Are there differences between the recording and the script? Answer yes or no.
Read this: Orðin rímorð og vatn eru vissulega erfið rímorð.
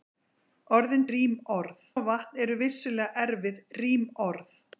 no